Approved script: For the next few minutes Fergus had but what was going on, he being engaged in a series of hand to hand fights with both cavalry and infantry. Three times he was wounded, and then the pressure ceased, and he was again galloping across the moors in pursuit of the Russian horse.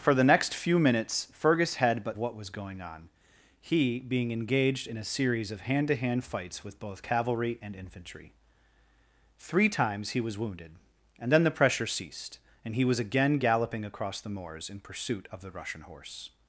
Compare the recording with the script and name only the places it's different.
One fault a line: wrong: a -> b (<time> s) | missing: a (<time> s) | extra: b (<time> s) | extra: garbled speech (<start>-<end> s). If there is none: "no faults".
no faults